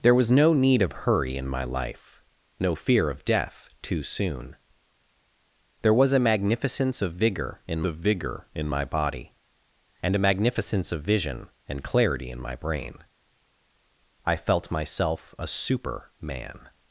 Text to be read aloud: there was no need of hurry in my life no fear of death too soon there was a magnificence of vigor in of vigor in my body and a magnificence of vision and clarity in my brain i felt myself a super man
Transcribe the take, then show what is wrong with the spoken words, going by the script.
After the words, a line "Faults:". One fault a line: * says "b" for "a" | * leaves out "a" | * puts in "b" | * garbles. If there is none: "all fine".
there was no need of hurry in my life no fear of death too soon there was a magnificence of vigor in of vigor in my body and a magnificence of vision and clarity in my brain i felt myself a super man
Faults:
all fine